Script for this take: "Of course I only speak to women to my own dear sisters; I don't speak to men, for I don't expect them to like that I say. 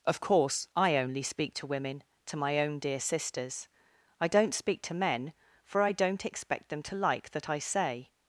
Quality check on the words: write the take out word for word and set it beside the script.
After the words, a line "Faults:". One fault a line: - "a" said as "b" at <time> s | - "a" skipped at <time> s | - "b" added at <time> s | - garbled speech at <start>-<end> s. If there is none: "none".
"Of course I only speak to women to my own dear sisters; I don't speak to men, for I don't expect them to like that I say.
Faults:
none